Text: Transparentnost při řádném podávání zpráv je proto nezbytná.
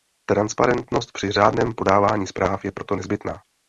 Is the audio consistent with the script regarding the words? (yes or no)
yes